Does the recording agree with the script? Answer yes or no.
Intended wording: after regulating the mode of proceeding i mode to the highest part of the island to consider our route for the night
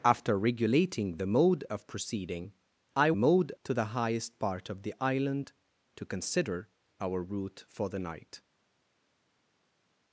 yes